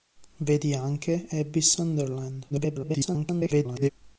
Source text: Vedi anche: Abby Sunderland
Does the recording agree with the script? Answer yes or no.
no